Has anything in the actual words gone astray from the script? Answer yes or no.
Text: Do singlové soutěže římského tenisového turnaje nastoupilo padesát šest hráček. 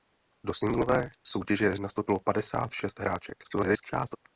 yes